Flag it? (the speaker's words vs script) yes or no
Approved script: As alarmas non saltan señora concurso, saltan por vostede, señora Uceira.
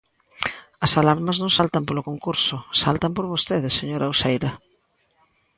yes